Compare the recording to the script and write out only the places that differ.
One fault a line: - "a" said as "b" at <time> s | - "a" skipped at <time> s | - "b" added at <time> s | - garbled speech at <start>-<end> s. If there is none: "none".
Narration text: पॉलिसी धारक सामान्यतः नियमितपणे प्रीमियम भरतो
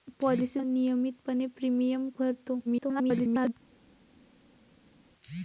- "धारक सामान्यतः" skipped at 0.6 s
- garbled speech at 2.7-3.5 s